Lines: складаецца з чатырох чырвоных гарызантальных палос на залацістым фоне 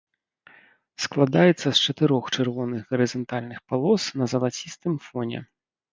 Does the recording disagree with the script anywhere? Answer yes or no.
no